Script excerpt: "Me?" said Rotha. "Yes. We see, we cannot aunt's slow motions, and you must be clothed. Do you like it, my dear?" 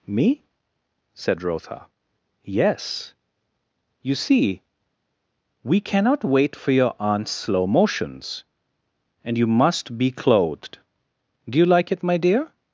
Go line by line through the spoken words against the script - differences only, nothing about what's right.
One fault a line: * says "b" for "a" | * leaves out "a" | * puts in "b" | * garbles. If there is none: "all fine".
* says "You" for "We"
* puts in "wait for your"